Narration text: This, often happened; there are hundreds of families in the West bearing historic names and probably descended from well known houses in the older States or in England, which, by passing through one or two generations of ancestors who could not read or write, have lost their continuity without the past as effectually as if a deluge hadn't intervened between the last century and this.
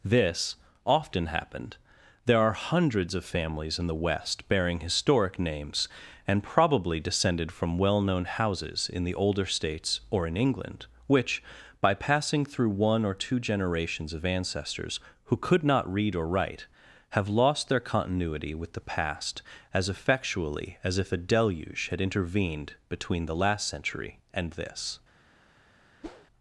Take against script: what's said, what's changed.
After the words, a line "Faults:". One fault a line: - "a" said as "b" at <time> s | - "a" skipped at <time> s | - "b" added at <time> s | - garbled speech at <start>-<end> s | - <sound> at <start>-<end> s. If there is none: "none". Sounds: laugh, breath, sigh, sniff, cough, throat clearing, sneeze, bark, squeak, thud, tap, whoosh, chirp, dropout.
This, often happened; there are hundreds of families in the West bearing historic names and probably descended from well known houses in the older States or in England, which, by passing through one or two generations of ancestors who could not read or write, have lost their continuity with the past as effectually as if a deluge had intervened between the last century and this.
Faults:
- "without" said as "with" at 18.6 s
- "hadn't" said as "had" at 21.9 s
- whoosh at 26.0-26.3 s